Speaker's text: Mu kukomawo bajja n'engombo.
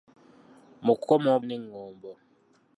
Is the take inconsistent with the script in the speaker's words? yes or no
yes